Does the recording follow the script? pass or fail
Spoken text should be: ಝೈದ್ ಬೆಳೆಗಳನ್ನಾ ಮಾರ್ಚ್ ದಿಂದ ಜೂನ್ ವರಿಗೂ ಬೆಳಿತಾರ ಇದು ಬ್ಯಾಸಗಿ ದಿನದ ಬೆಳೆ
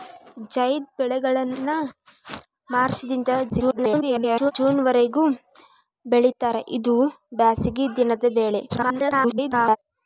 fail